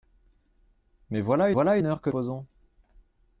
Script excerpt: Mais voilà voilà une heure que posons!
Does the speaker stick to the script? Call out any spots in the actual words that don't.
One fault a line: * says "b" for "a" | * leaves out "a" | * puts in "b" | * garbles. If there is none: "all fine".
all fine